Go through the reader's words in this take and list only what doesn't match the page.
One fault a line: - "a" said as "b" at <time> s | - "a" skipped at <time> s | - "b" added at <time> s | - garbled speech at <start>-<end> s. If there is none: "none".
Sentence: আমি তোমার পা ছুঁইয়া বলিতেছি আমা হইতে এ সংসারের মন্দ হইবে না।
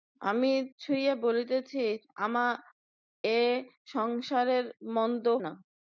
- "তোমার পা" skipped at 0.5 s
- "হইতে" skipped at 2.5 s
- "হইবে" skipped at 5.3 s